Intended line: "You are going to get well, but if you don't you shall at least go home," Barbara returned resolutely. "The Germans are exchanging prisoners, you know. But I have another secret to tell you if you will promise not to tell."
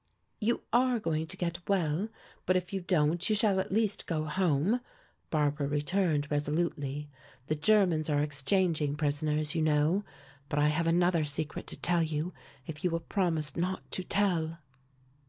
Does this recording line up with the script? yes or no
yes